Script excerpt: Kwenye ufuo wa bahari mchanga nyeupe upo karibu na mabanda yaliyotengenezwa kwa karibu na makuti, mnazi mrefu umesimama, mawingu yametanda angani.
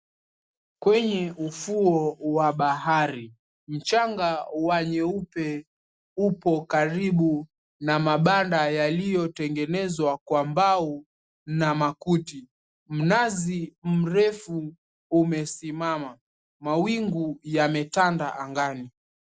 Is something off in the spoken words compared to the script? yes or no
yes